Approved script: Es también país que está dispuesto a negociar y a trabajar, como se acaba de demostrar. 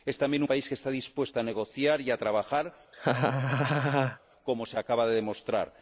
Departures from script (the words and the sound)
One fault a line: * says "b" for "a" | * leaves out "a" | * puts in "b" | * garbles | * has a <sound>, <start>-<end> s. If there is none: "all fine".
* has a laugh, 2.9-4.2 s